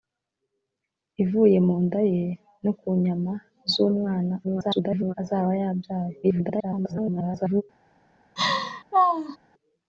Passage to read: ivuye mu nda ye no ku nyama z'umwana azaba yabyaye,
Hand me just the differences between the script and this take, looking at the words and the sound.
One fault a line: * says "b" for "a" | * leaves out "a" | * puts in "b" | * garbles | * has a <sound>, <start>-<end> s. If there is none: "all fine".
* garbles
* garbles
* has a laugh, 8.4-9.4 s